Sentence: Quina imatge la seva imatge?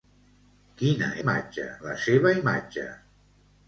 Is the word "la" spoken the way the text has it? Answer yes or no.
yes